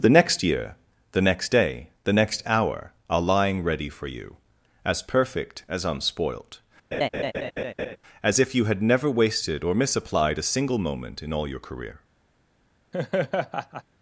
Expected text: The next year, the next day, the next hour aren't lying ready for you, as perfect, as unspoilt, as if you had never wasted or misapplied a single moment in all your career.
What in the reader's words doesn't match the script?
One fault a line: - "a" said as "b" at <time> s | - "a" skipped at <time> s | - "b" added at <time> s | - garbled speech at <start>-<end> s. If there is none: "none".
- "aren't" said as "are" at 3.1 s